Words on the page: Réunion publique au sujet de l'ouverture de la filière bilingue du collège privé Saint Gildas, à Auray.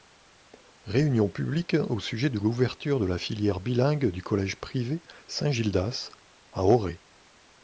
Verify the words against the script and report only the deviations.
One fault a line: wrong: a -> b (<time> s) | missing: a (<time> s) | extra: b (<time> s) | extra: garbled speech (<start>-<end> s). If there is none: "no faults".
no faults